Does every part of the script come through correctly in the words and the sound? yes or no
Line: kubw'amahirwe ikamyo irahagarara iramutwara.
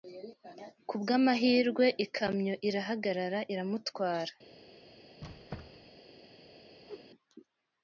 no